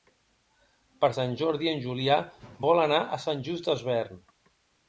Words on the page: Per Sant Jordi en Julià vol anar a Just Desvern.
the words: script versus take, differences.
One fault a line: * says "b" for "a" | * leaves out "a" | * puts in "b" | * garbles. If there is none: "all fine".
* puts in "Sant"